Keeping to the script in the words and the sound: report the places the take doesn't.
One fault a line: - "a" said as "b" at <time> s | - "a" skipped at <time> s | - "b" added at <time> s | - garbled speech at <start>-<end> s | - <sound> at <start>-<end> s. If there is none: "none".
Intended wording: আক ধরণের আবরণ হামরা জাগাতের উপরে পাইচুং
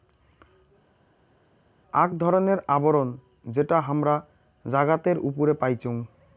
- "যেটা" added at 3.5 s